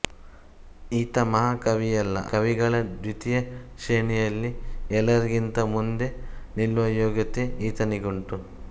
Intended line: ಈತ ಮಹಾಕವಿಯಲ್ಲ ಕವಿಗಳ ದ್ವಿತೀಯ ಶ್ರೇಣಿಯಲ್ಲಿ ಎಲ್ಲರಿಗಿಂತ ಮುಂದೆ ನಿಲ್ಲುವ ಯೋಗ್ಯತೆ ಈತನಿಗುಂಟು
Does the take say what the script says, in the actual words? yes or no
yes